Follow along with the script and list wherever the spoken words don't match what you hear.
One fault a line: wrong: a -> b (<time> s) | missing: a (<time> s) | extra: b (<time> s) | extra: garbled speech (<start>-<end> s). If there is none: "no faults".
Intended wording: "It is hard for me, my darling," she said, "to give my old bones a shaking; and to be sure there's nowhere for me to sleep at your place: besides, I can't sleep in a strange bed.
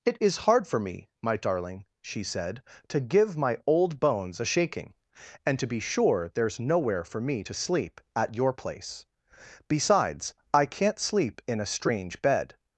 no faults